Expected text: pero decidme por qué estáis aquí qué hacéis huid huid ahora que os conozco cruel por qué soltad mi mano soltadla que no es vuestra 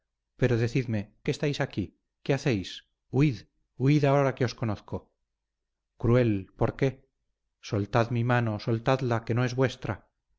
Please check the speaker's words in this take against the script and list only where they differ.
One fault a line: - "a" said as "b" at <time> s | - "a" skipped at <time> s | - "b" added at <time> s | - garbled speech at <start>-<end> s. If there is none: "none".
- "por" skipped at 1.0 s